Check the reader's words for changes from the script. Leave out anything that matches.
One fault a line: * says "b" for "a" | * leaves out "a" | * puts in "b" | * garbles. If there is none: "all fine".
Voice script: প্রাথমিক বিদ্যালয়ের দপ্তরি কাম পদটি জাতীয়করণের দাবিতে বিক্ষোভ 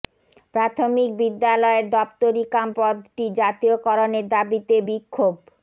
all fine